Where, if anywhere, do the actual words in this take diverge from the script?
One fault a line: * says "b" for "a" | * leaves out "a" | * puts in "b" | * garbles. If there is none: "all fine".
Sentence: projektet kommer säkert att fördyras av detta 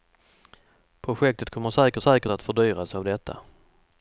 * puts in "säkert"